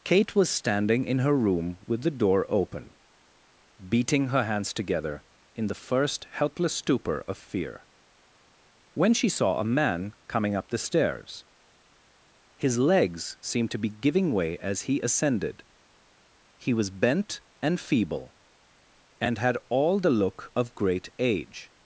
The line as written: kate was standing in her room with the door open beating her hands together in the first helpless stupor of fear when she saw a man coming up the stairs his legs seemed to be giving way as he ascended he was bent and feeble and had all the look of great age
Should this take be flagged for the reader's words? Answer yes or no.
no